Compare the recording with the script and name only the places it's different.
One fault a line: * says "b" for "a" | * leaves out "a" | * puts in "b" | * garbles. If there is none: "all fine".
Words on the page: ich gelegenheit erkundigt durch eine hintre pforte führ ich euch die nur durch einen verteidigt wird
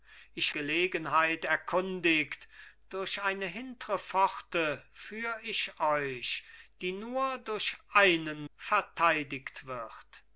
all fine